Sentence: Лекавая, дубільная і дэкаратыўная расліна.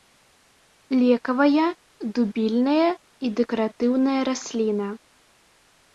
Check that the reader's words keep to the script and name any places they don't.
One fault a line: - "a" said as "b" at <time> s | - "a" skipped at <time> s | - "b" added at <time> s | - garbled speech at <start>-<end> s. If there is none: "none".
none